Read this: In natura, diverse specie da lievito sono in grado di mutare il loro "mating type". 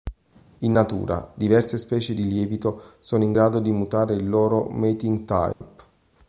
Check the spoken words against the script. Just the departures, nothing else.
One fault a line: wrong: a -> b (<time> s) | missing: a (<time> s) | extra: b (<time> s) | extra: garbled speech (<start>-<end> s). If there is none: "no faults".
wrong: da -> di (2.1 s)